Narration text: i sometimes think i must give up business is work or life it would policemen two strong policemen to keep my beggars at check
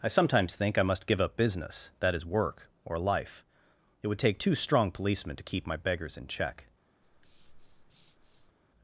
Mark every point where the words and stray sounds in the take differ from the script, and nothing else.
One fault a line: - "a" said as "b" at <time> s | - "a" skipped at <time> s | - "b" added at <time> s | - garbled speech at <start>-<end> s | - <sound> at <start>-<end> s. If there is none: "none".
- "that" added at 2.0 s
- "policemen" said as "take" at 4.2 s
- "at" said as "in" at 6.2 s
- breath at 7.0-8.5 s